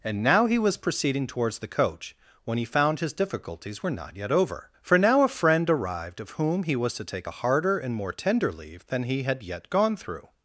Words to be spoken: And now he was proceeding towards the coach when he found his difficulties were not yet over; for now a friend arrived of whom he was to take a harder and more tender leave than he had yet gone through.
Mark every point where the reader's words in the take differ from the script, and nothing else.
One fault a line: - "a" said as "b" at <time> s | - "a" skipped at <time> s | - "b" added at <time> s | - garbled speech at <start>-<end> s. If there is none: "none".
none